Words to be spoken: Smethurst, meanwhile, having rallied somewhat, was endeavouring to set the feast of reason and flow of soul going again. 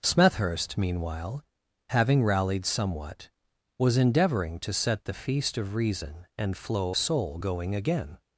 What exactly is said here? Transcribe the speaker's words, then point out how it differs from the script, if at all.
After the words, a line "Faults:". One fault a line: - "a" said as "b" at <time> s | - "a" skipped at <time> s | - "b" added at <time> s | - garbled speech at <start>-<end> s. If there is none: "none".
Smethurst, meanwhile, having rallied somewhat, was endeavouring to set the feast of reason and flow soul going again.
Faults:
- "of" skipped at 7.0 s